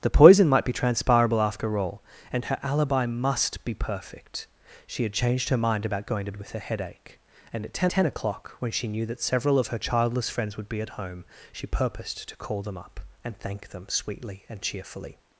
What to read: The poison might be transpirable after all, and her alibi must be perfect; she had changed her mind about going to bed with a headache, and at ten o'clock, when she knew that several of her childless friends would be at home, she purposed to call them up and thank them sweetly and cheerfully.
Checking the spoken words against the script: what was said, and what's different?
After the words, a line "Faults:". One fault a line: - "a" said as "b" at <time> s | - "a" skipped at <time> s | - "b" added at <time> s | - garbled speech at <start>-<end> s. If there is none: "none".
The poison might be transpirable after all, and her alibi must be perfect; she had changed her mind about going to with a headache, and at ten ten o'clock, when she knew that several of her childless friends would be at home, she purposed to call them up and thank them sweetly and cheerfully.
Faults:
- "bed" skipped at 6.3 s
- "ten" added at 7.9 s